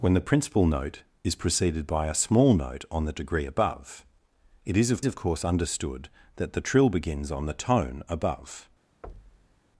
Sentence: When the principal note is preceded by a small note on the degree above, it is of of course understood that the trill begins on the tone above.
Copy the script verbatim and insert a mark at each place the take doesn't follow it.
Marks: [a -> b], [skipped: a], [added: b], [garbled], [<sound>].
When the principal note is preceded by a small note on the degree above, it is of of course understood that the trill begins on the tone above. [thud]